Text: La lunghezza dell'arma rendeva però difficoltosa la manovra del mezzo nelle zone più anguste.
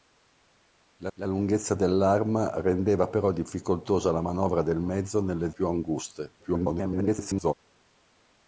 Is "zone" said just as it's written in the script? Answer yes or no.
no